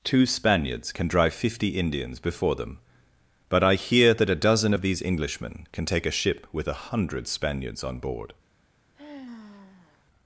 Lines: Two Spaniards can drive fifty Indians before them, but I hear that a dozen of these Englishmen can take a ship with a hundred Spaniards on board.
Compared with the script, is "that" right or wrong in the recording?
right